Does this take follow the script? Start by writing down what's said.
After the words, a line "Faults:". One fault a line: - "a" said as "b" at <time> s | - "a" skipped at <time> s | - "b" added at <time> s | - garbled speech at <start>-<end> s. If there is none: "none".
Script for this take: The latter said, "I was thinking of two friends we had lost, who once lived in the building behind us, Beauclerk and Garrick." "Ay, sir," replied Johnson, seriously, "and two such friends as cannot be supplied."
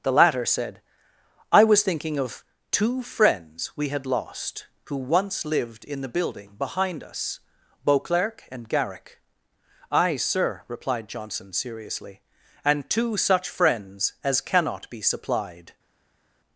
The latter said, "I was thinking of two friends we had lost, who once lived in the building behind us, Beauclerk and Garrick." "Ay, sir," replied Johnson, seriously, "and two such friends as cannot be supplied."
Faults:
none